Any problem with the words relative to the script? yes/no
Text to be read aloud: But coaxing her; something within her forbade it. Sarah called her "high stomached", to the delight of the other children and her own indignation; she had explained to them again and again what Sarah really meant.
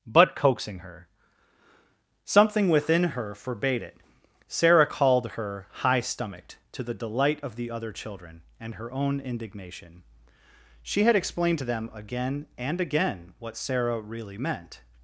no